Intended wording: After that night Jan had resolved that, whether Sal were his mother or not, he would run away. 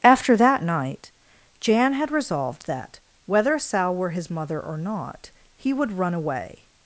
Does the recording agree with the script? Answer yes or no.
yes